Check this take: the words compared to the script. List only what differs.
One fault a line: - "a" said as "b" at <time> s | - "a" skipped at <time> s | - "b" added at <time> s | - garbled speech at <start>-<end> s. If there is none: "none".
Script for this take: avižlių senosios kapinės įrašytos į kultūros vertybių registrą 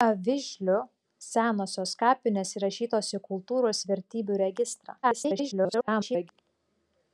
- garbled speech at 5.0-6.3 s